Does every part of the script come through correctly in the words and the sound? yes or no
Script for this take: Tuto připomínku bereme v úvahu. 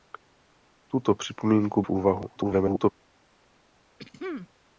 no